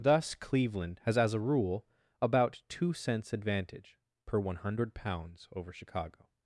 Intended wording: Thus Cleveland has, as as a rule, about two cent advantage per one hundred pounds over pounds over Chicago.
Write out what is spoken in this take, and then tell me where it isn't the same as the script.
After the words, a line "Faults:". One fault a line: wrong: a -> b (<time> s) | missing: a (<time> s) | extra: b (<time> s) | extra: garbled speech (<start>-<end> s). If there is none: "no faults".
Thus Cleveland has, as a rule, about two cents advantage per one hundred pounds over Chicago.
Faults:
missing: as (1.4 s)
wrong: cent -> cents (2.9 s)
missing: pounds over (5.7 s)